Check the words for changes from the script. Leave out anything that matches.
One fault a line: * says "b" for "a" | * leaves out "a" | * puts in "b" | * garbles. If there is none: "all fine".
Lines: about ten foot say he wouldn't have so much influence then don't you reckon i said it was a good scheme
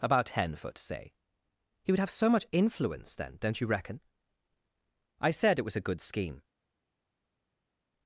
* says "would" for "wouldn't"